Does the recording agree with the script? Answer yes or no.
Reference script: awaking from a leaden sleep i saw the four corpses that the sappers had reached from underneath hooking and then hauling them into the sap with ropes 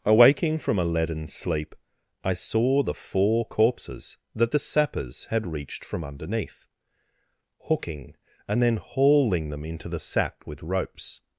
no